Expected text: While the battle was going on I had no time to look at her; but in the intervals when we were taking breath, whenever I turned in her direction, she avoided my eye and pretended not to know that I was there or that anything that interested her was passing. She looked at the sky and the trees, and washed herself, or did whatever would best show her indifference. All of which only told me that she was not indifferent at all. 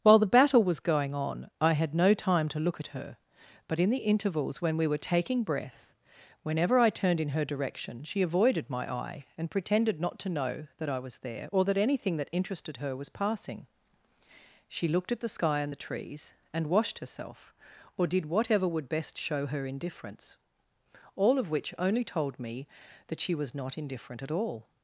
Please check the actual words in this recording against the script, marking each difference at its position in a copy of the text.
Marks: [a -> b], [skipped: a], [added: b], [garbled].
While the battle was going on I had no time to look at her; but in the intervals when we were taking breath, whenever I turned in her direction, she avoided my eye and pretended not to know that I was there or that anything that interested her was passing. She looked at the sky and the trees, and washed herself, or did whatever would best show her indifference. All of which only told me that she was not indifferent at all.